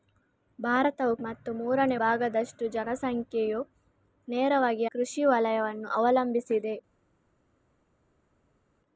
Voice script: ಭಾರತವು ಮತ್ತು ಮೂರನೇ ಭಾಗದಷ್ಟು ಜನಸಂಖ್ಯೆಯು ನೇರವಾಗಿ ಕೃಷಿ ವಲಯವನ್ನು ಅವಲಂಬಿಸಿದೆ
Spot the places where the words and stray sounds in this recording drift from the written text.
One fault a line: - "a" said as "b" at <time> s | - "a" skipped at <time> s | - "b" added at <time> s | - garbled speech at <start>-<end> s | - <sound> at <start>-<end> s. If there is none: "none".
none